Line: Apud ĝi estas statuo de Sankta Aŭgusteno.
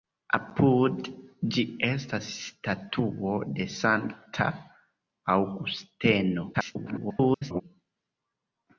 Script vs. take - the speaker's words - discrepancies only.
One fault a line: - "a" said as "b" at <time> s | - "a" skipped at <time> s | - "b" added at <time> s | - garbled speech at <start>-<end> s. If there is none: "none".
- garbled speech at 6.5-7.6 s